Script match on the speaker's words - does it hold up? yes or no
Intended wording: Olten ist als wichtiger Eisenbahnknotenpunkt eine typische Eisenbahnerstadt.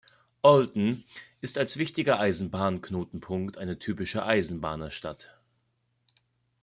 yes